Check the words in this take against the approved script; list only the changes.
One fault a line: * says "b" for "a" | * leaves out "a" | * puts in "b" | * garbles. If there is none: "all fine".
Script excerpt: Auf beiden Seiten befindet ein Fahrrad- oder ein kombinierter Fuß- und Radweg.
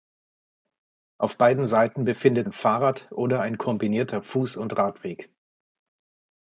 all fine